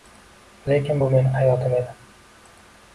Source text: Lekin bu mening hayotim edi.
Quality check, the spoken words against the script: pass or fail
pass